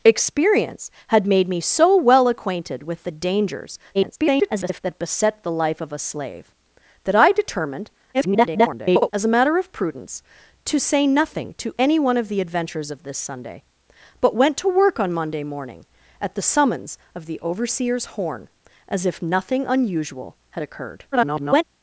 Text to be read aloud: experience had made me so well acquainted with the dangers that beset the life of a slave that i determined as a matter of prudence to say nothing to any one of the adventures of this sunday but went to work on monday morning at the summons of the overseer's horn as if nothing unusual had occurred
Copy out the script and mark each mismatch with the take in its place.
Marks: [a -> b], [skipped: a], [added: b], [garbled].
experience had made me so well acquainted with the dangers [garbled] that beset the life of a slave that i determined [garbled] as a matter of prudence to say nothing to any one of the adventures of this sunday but went to work on monday morning at the summons of the overseer's horn as if nothing unusual had occurred [garbled]